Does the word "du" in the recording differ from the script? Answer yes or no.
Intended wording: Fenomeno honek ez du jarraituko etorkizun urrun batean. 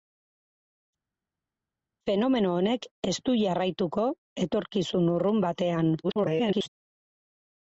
no